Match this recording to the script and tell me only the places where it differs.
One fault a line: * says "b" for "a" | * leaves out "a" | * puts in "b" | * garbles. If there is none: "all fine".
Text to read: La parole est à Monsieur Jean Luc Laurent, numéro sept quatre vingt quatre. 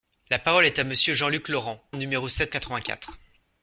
all fine